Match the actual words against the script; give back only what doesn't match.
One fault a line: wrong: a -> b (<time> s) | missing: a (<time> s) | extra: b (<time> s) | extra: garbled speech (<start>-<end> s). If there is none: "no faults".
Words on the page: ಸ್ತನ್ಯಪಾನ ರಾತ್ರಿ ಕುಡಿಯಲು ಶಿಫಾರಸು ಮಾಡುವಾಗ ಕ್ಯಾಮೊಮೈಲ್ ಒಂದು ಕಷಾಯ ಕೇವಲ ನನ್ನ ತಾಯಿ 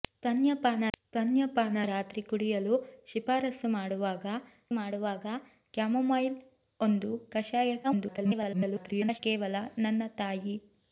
extra: ಸ್ತನ್ಯಪಾನ (1.0 s)
extra: ಮಾಡುವಾಗ (4.7 s)
extra: garbled speech (7.8-9.2 s)